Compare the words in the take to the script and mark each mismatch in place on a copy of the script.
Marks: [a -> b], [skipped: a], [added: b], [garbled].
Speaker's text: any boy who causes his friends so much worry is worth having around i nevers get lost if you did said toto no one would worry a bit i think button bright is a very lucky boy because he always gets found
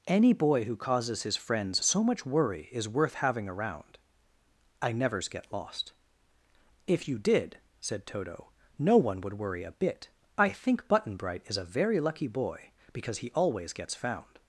any boy who causes his friends so much worry is worth having around i nevers get lost if you did said toto no one would worry a bit i think button bright is a very lucky boy because he always gets found